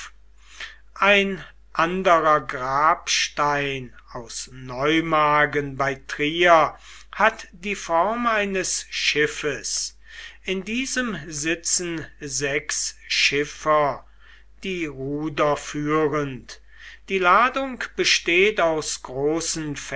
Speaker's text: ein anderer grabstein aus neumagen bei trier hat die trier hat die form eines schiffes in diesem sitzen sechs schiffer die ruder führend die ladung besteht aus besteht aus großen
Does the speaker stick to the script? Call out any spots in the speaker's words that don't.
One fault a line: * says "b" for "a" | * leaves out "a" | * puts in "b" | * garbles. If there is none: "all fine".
* leaves out "trier hat die"
* leaves out "besteht aus"